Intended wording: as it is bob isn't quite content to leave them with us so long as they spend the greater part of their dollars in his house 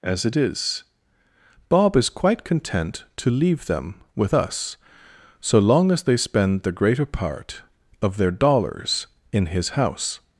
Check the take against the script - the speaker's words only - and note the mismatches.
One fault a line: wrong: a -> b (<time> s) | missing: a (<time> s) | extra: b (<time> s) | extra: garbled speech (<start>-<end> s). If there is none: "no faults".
wrong: isn't -> is (1.9 s)